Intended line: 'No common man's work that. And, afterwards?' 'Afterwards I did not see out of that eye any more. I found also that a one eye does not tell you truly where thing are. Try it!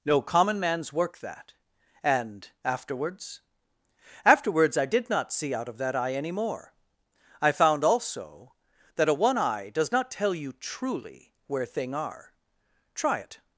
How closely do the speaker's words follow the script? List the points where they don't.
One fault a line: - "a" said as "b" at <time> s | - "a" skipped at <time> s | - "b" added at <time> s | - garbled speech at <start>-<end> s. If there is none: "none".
none